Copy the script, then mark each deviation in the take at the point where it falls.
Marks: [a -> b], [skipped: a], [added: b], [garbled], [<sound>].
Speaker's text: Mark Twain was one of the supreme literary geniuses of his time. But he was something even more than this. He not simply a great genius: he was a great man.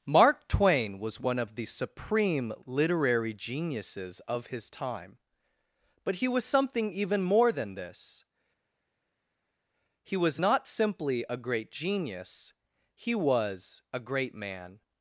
Mark Twain was one of the supreme literary geniuses of his time. But he was something even more than this. He [added: was] not simply a great genius: he was a great man.